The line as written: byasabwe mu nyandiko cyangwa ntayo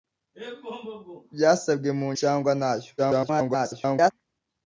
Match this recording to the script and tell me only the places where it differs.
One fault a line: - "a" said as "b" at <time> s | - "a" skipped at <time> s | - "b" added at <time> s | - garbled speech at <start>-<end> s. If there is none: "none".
- "nyandiko" skipped at 2.1 s
- garbled speech at 3.0-4.1 s